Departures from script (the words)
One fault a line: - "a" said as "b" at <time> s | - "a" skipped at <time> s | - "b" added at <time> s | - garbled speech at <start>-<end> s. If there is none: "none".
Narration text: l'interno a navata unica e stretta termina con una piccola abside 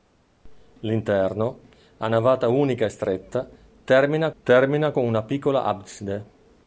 - "termina" added at 4.4 s